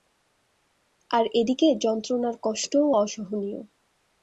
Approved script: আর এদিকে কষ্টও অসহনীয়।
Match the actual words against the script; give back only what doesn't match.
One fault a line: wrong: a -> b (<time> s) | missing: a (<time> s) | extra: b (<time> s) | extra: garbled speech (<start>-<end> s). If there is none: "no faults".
extra: যন্ত্রণার (1.8 s)